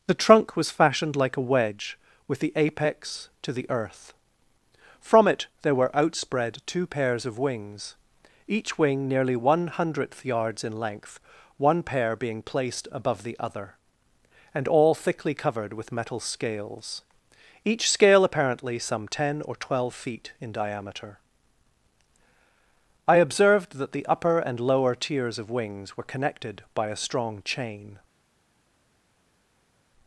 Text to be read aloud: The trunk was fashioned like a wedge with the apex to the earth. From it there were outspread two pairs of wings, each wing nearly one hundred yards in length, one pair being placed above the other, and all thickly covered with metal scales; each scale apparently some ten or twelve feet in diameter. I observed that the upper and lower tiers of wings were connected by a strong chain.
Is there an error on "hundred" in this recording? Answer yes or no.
yes